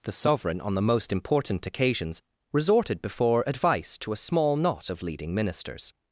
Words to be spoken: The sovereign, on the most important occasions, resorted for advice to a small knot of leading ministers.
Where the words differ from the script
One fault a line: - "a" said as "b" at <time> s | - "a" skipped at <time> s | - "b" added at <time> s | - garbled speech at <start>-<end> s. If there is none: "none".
- "for" said as "before" at 3.0 s